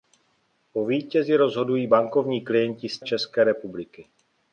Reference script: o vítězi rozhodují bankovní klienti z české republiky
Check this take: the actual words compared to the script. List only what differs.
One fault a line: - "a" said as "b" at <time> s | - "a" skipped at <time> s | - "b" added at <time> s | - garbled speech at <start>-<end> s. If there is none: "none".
none